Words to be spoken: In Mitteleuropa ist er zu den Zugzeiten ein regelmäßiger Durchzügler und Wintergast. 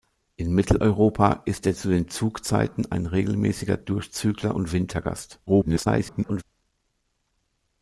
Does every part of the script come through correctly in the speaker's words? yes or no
no